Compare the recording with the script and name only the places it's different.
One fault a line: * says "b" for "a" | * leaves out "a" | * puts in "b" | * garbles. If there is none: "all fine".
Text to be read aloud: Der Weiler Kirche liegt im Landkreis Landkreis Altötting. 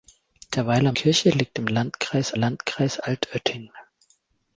all fine